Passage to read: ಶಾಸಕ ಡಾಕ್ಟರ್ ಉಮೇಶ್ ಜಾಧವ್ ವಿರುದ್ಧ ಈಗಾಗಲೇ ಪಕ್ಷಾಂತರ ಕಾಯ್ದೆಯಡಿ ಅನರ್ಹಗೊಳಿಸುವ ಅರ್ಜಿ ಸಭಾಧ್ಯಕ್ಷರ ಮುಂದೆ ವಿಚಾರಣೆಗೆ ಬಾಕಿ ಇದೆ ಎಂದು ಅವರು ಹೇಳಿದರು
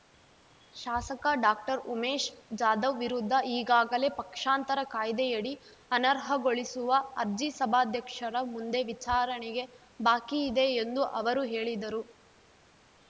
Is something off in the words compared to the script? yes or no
no